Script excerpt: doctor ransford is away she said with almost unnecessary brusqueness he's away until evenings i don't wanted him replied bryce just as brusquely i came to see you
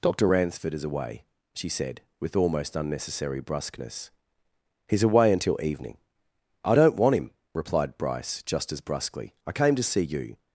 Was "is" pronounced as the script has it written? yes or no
yes